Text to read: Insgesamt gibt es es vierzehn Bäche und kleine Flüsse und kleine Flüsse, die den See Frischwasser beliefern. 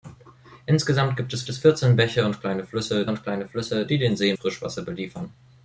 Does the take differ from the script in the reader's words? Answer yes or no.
no